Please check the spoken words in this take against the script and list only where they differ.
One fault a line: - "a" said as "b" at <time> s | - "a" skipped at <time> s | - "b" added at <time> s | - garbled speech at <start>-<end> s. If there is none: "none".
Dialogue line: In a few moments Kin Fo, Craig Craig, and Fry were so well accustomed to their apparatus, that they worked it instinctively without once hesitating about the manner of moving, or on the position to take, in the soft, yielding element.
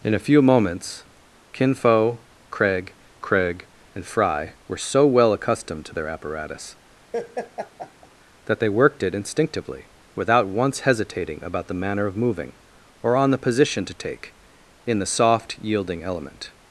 none